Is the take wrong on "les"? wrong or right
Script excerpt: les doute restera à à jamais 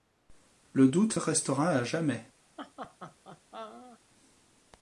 wrong